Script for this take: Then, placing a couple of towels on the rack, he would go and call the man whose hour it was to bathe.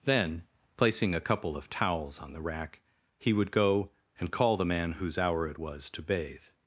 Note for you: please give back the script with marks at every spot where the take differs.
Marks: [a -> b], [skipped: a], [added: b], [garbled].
Then, placing a couple of towels on the rack, he would go and call the man whose hour it was to bathe.